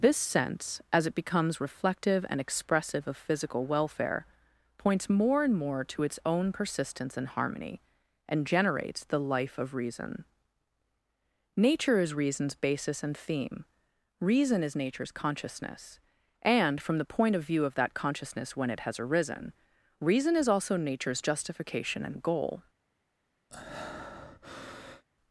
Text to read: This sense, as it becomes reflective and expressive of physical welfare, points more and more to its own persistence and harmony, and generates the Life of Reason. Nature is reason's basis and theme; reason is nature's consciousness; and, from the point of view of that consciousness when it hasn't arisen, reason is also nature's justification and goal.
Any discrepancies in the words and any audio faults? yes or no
yes